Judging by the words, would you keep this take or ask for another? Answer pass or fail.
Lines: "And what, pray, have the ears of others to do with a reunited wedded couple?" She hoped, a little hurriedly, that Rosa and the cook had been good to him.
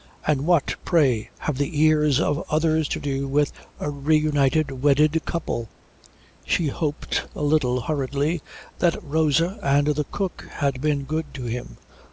pass